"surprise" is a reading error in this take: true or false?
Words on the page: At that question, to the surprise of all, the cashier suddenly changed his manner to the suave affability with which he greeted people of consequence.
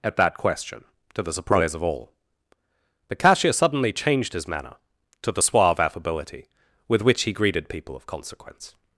false